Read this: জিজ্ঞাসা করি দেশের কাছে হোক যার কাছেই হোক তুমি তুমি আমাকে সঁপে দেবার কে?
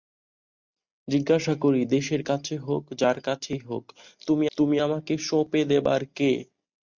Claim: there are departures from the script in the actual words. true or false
false